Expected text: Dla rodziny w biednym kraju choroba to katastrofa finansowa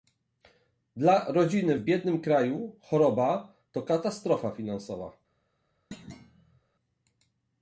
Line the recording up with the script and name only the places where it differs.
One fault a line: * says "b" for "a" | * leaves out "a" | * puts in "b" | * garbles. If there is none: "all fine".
all fine